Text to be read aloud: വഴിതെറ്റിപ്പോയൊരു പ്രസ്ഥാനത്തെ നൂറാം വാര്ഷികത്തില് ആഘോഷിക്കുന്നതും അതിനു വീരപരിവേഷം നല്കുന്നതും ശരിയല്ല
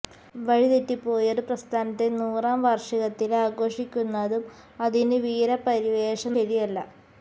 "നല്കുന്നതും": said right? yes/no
no